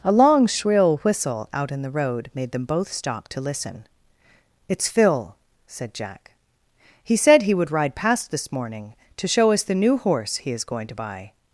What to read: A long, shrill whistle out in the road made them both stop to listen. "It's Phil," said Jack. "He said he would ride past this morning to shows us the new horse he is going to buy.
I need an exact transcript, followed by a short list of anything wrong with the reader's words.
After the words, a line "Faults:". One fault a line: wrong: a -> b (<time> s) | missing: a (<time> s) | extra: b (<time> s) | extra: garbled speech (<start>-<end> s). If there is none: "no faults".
A long, shrill whistle out in the road made them both stop to listen. "It's Phil," said Jack. "He said he would ride past this morning to show us the new horse he is going to buy.
Faults:
wrong: shows -> show (9.3 s)